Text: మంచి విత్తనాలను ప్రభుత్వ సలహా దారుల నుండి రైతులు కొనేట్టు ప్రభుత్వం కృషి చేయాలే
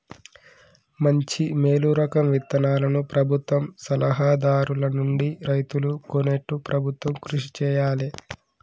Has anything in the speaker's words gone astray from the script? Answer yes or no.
yes